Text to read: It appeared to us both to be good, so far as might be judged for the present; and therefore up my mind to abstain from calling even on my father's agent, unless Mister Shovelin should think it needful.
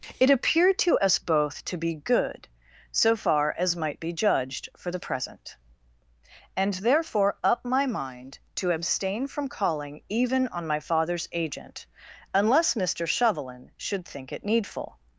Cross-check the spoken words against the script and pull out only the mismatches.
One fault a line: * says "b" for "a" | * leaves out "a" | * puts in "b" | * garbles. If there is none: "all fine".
all fine